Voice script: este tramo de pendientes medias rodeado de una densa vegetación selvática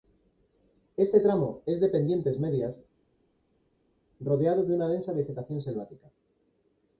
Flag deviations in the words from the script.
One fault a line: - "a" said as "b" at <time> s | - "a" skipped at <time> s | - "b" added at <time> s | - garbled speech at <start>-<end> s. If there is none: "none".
- "es" added at 1.7 s